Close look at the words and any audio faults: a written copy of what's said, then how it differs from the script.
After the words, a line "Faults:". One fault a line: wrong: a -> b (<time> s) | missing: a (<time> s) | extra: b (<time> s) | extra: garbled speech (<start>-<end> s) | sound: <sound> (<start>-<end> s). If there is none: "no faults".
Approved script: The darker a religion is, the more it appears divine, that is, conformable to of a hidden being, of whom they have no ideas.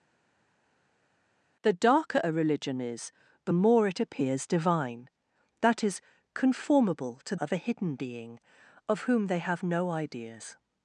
The darker a religion is, the more it appears divine, that is, conformable to of a hidden being, of whom they have no ideas.
Faults:
no faults